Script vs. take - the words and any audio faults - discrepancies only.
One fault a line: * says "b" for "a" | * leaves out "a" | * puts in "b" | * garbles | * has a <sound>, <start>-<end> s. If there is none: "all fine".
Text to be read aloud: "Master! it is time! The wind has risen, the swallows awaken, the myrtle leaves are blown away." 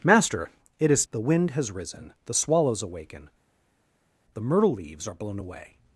* leaves out "time"